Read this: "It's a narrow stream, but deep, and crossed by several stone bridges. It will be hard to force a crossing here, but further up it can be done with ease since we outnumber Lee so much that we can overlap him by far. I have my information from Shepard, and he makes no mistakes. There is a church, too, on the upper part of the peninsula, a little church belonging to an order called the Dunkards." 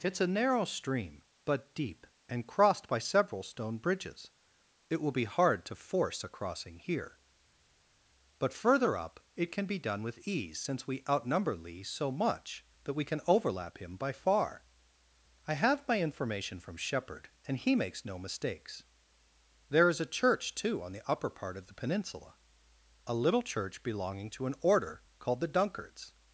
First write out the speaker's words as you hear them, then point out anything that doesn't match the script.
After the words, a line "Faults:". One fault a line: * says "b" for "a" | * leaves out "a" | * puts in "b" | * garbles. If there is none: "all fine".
"It's a narrow stream, but deep, and crossed by several stone bridges. It will be hard to force a crossing here, but further up it can be done with ease since we outnumber Lee so much that we can overlap him by far. I have my information from Shepard, and he makes no mistakes. There is a church, too, on the upper part of the peninsula, a little church belonging to an order called the Dunkards."
Faults:
all fine